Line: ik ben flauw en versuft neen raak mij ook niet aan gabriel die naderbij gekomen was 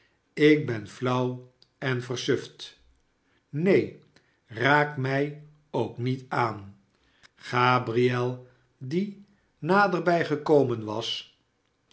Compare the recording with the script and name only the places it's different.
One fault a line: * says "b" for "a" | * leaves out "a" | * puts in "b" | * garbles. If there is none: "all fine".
all fine